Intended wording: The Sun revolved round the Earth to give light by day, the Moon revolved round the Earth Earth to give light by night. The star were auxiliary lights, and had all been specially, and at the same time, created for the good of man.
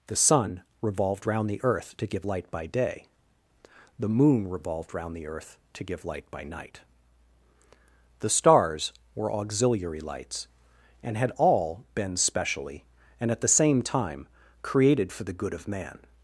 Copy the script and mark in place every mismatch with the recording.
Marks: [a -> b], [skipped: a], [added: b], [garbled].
The Sun revolved round the Earth to give light by day, the Moon revolved round the Earth [skipped: Earth] to give light by night. The [star -> stars] were auxiliary lights, and had all been specially, and at the same time, created for the good of man.